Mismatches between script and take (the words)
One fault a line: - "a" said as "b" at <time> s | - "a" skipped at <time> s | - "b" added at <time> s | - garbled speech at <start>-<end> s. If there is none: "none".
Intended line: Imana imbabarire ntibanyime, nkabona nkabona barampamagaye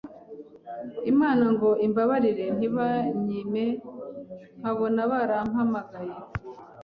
- "ngo" added at 1.5 s
- "nkabona" skipped at 5.0 s